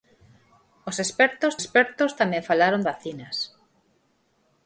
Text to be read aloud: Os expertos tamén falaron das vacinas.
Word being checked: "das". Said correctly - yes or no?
no